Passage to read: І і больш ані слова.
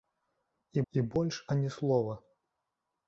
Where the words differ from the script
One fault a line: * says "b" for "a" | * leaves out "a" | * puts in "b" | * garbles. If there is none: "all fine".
all fine